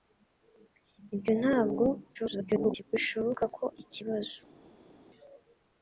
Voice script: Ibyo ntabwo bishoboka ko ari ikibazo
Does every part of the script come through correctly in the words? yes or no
no